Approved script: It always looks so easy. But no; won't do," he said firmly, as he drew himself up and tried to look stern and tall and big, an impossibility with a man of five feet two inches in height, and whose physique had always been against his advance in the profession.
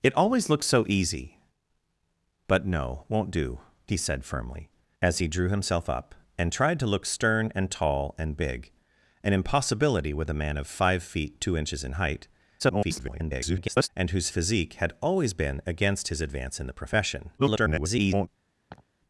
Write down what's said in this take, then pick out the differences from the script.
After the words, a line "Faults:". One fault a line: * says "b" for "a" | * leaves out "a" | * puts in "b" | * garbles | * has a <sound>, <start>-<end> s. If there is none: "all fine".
It always looks so easy. But no; won't do," he said firmly, as he drew himself up and tried to look stern and tall and big, an impossibility with a man of five feet two inches in height, [garbled] and whose physique had always been against his advance in the profession. [garbled]
Faults:
* garbles
* garbles
* has a laugh, 18.7-18.9 s